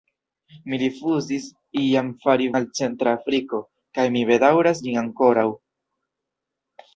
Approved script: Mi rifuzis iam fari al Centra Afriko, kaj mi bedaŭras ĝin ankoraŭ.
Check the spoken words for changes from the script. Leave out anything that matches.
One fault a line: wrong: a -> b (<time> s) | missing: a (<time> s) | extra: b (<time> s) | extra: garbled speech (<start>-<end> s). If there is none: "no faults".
no faults